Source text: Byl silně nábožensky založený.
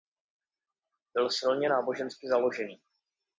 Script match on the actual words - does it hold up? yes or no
yes